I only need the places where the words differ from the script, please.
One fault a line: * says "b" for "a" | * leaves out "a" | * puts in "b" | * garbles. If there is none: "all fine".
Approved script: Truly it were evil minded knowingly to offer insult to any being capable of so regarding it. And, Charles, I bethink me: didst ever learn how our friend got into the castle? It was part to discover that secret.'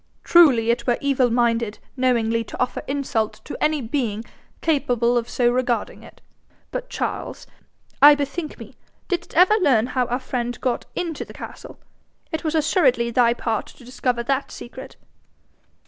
* says "But" for "And"
* puts in "assuredly thy"